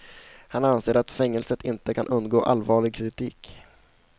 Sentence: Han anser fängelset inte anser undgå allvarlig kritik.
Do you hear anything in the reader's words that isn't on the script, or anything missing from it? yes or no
yes